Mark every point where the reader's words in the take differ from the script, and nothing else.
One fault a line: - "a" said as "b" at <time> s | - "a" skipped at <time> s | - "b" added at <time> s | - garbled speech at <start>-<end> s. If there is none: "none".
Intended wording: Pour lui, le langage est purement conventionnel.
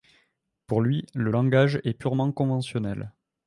none